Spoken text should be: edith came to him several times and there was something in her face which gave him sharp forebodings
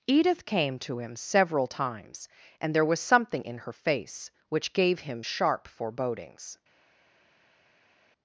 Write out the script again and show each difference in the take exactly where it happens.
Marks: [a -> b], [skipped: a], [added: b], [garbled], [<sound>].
edith came to him several times and there was something in her face which gave him sharp forebodings